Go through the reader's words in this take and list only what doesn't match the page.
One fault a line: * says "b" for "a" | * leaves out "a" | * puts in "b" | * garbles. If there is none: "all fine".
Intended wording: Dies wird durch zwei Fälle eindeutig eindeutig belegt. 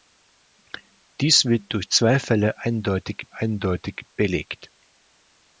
all fine